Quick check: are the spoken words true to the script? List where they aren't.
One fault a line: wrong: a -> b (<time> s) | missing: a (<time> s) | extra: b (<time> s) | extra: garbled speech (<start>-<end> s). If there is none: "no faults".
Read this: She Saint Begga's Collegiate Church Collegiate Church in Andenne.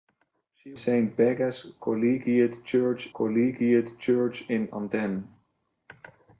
no faults